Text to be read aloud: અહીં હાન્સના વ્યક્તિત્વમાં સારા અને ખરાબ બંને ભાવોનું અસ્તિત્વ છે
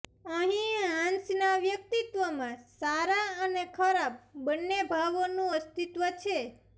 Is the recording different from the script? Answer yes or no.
no